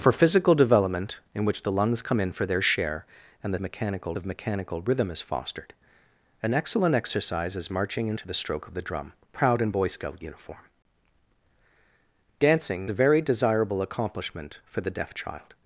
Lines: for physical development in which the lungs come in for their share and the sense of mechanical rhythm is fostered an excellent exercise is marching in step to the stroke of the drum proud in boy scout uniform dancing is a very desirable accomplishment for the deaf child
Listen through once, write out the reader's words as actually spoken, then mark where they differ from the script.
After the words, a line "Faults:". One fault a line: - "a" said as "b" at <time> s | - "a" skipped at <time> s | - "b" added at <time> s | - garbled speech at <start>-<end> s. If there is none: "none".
for physical development in which the lungs come in for their share and the mechanical of mechanical rhythm is fostered an excellent exercise is marching in to the stroke of the drum proud in boy scout uniform dancing a very desirable accomplishment for the deaf child
Faults:
- "sense" said as "mechanical" at 3.6 s
- "step" skipped at 8.2 s
- "is" skipped at 12.9 s